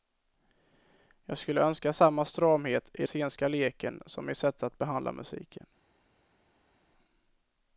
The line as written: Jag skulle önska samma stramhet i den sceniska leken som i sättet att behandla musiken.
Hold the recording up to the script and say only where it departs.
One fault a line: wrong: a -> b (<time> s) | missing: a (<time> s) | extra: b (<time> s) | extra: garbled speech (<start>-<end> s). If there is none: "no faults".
missing: den (3.0 s)